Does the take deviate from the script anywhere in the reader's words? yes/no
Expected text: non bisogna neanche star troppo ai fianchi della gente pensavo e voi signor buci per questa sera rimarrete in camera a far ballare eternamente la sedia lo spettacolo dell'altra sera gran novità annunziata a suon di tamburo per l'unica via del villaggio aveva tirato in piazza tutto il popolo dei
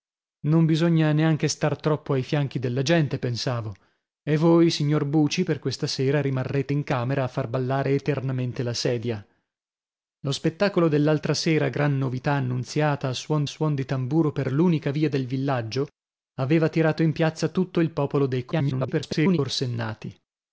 yes